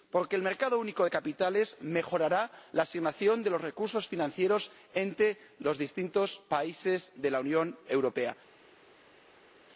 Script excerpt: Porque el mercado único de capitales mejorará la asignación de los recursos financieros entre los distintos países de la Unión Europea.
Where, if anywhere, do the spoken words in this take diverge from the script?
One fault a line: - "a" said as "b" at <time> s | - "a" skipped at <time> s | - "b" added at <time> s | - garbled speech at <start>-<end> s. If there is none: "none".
none